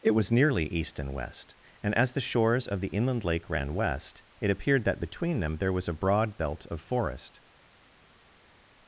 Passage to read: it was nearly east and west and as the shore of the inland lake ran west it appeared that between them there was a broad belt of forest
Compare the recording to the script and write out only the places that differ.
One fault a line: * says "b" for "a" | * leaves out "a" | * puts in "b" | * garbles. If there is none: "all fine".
* says "shores" for "shore"